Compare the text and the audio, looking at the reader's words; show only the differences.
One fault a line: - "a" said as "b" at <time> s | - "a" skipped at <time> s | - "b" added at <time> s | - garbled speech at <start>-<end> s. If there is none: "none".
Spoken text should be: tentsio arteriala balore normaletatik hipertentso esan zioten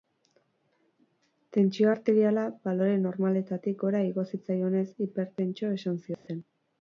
- "gora igo zitzaionez" added at 3.8 s